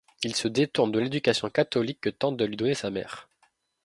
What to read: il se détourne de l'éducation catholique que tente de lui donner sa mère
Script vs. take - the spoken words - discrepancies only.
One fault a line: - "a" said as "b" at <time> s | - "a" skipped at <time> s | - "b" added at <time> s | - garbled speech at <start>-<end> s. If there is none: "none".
none